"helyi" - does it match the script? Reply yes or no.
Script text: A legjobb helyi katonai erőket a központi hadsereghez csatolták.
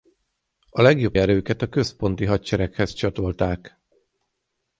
no